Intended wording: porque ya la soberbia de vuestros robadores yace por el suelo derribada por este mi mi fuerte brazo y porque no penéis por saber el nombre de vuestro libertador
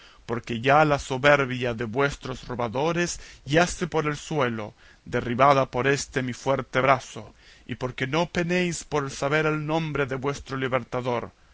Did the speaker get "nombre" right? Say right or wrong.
right